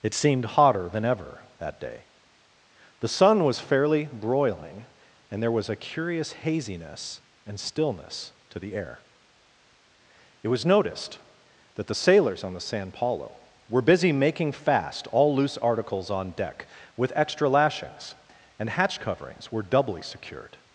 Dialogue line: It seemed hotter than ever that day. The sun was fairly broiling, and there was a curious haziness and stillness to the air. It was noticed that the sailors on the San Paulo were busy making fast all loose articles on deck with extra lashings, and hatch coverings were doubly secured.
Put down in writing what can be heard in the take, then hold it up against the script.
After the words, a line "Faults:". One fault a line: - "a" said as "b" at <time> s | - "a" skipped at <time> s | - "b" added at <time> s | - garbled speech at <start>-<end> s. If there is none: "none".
It seemed hotter than ever that day. The sun was fairly broiling, and there was a curious haziness and stillness to the air. It was noticed that the sailors on the San Paulo were busy making fast all loose articles on deck with extra lashings, and hatch coverings were doubly secured.
Faults:
none